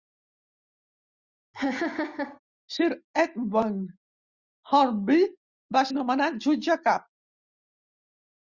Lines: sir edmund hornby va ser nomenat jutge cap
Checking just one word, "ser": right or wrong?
wrong